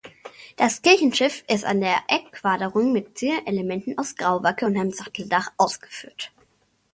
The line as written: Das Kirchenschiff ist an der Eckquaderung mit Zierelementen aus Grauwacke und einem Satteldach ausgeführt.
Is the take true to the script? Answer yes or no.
yes